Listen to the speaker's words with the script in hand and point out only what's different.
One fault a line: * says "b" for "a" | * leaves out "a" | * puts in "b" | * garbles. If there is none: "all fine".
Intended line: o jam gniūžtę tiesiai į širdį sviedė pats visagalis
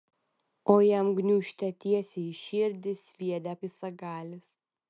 * leaves out "pats"